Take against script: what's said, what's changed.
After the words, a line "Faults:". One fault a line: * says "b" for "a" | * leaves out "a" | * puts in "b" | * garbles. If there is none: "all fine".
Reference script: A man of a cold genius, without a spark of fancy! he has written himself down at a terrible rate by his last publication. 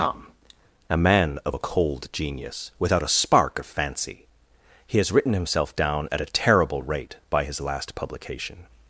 tom A man of a cold genius, without a spark of fancy! he has written himself down at a terrible rate by his last publication.
Faults:
* puts in "tom"